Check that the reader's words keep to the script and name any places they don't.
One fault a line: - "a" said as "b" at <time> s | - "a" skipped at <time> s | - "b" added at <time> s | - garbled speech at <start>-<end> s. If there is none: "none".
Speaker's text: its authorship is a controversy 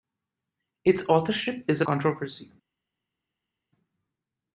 none